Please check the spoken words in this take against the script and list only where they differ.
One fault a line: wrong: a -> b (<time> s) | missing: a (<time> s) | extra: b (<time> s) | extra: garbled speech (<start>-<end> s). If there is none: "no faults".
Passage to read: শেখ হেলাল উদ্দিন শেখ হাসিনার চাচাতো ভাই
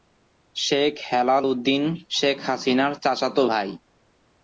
no faults